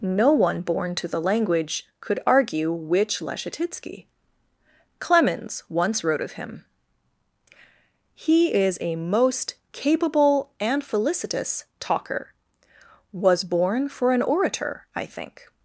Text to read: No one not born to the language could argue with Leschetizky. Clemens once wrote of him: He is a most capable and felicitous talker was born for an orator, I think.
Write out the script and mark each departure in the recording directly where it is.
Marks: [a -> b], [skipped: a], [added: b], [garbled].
No one [skipped: not] born to the language could argue [with -> which] Leschetizky. Clemens once wrote of him: He is a most capable and felicitous talker was born for an orator, I think.